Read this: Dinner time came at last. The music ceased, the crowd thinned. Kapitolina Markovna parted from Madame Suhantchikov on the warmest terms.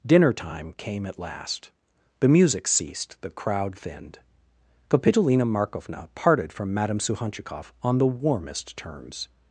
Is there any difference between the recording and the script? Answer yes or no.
no